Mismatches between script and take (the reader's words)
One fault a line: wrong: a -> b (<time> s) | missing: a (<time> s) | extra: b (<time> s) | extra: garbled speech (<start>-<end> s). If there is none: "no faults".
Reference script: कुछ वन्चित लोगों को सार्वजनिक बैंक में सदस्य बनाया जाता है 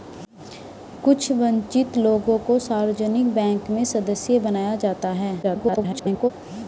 extra: garbled speech (5.4-6.3 s)